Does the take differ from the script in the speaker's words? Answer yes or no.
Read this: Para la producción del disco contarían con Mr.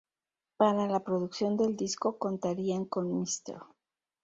no